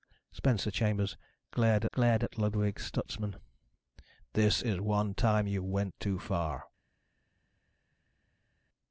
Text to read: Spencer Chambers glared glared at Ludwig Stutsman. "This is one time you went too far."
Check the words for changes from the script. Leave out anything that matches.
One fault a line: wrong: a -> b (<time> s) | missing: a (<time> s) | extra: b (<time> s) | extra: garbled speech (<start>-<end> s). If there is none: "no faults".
no faults